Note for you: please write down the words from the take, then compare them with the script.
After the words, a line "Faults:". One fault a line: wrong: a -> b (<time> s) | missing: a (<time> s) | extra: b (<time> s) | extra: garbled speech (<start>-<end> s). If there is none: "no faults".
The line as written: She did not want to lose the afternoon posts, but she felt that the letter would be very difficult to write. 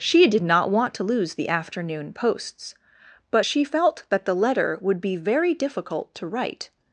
She did not want to lose the afternoon posts, but she felt that the letter would be very difficult to write.
Faults:
no faults